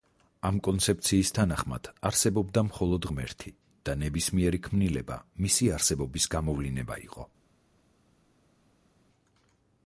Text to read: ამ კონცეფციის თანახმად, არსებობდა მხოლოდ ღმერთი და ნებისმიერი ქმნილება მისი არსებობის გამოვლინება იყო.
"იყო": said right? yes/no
yes